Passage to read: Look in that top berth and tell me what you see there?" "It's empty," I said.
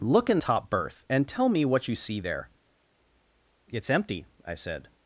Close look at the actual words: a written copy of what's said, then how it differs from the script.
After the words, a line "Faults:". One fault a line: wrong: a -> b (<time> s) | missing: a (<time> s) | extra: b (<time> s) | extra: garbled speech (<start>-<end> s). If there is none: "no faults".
Look in top berth and tell me what you see there?" "It's empty," I said.
Faults:
missing: that (0.4 s)